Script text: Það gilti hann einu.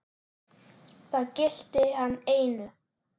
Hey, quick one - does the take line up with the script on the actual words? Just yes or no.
yes